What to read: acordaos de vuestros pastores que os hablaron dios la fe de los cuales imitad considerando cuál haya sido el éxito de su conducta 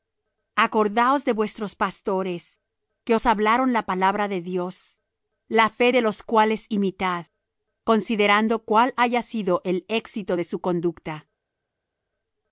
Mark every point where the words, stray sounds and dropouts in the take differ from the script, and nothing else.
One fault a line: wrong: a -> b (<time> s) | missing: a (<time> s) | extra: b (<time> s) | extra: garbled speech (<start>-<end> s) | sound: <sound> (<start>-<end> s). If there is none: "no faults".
extra: la palabra de (3.7 s)